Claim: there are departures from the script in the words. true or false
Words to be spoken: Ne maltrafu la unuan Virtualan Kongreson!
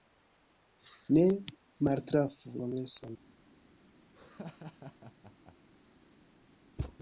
true